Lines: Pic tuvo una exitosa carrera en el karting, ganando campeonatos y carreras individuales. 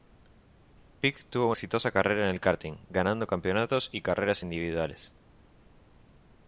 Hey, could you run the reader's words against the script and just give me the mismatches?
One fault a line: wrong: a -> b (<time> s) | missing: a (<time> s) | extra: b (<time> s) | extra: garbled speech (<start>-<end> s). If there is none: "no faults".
missing: una (1.5 s)